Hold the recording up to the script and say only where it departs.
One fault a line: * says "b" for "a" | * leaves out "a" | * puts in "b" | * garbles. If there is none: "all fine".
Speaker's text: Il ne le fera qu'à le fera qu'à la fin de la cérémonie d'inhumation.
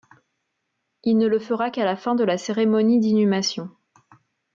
* leaves out "le fera qu'à"